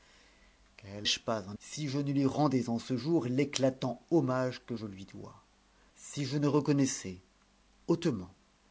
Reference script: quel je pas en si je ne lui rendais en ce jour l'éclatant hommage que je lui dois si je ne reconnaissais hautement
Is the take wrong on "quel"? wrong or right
right